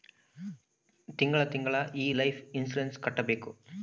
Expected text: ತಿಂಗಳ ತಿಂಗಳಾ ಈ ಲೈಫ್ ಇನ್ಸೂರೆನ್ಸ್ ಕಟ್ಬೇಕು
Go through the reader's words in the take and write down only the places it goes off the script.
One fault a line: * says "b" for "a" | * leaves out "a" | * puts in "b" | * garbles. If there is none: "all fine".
all fine